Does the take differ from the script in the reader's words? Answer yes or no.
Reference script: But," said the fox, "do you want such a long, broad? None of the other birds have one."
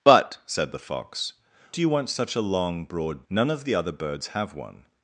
no